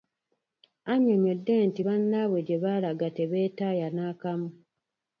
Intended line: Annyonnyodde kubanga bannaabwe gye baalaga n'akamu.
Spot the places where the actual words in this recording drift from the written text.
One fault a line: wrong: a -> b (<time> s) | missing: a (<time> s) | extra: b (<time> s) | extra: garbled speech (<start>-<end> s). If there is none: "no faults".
wrong: kubanga -> nti (1.7 s)
extra: tebeetaaya (3.2 s)